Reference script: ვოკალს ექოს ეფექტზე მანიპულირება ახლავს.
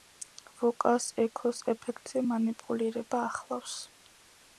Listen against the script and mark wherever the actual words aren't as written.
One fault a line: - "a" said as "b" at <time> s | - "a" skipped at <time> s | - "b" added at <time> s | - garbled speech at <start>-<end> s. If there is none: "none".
none